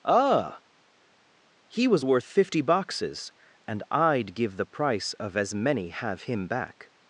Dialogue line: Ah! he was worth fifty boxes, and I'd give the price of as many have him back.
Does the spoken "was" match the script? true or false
true